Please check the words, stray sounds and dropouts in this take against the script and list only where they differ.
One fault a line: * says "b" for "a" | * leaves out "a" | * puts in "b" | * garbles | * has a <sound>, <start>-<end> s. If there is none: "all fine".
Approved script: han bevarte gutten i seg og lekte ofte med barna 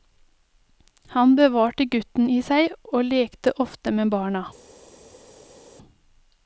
all fine